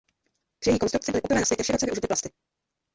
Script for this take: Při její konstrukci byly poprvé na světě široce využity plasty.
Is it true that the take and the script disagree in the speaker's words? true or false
false